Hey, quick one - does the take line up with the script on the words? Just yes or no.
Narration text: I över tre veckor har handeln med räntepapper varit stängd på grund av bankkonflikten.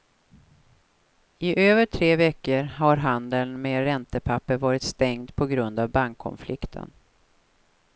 yes